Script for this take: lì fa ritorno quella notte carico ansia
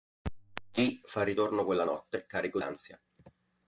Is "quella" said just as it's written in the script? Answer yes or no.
yes